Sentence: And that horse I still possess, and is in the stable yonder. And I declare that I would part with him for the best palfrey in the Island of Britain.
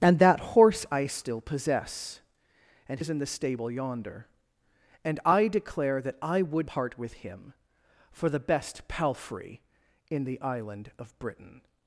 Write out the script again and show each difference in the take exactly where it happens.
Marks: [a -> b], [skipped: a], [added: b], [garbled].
And that horse I still possess, and is in the stable yonder. And I declare that I would part with him for the best palfrey in the Island of Britain.